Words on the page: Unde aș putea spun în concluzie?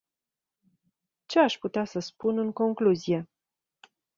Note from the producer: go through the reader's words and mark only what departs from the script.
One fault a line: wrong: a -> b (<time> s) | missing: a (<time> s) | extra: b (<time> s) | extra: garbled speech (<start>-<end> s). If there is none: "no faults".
wrong: Unde -> Ce (1.2 s)
extra: să (1.9 s)